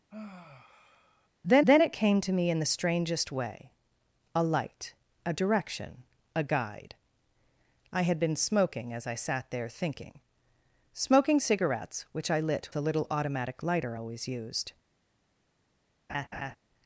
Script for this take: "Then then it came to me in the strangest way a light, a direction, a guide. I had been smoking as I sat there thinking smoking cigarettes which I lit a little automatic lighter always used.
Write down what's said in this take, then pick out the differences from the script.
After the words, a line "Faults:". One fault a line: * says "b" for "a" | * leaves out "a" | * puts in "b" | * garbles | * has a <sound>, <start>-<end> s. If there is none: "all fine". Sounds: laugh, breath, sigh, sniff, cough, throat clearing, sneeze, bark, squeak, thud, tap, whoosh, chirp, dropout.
"Then then it came to me in the strangest way a light, a direction, a guide. I had been smoking as I sat there thinking smoking cigarettes which I lit a little automatic lighter always used.
Faults:
* has a sigh, 0.1-1.3 s
* has a laugh, 16.1-16.6 s